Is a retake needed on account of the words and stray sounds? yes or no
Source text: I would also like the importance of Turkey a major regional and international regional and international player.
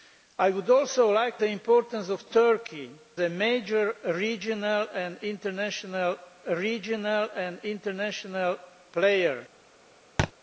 yes